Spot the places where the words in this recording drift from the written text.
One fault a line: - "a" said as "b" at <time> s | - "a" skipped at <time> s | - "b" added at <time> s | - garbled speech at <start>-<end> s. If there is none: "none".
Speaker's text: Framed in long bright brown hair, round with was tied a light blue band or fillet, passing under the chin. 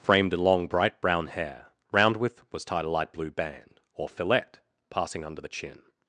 none